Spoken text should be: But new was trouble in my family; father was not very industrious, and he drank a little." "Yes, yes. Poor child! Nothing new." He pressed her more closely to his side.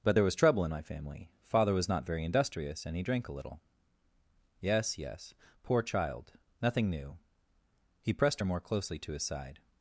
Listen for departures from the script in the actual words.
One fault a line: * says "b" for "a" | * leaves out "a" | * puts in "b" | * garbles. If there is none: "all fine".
* says "there" for "new"